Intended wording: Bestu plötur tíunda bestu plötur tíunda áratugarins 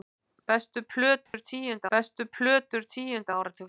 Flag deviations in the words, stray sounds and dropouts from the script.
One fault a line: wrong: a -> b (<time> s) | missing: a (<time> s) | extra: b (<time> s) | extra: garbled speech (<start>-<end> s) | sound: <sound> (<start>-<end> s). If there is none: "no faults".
sound: dropout (1.3-1.3 s)